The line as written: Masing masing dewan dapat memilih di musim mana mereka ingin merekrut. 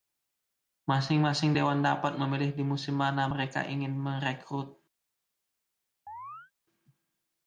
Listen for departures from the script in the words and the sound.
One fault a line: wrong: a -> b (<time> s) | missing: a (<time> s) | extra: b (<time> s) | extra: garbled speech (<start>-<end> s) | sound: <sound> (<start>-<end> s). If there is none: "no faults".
sound: chirp (6.1-6.5 s)